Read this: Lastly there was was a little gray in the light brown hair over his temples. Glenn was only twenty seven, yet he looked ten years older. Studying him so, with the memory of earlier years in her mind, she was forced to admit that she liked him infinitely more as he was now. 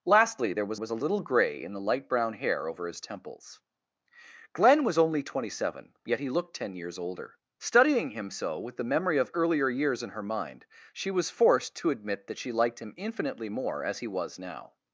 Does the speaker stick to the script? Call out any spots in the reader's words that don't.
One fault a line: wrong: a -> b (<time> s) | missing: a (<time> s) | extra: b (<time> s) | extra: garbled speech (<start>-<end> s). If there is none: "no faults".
no faults